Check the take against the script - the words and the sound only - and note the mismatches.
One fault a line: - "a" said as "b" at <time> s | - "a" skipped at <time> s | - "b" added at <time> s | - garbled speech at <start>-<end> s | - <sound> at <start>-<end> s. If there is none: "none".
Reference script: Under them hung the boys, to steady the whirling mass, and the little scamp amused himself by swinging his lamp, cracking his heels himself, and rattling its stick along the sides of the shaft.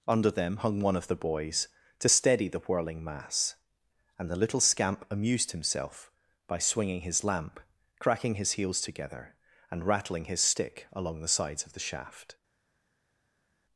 - "one of" added at 0.8 s
- "himself" said as "together" at 8.8 s
- "its" said as "his" at 10.2 s